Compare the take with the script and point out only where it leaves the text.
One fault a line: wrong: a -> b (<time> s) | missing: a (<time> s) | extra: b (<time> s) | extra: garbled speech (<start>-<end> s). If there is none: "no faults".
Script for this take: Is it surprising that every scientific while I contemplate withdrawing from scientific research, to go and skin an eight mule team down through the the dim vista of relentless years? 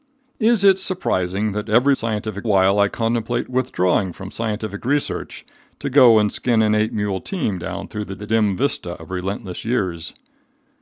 no faults